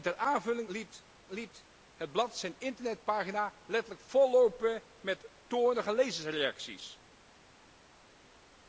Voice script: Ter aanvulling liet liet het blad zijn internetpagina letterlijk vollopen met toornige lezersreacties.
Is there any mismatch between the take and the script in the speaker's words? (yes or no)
no